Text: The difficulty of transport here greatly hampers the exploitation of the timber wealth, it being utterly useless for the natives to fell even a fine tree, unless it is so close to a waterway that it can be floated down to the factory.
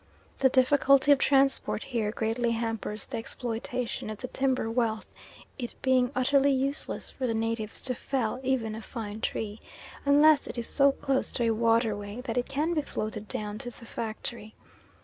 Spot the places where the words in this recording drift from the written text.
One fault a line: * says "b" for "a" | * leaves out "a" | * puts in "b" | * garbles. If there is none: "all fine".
all fine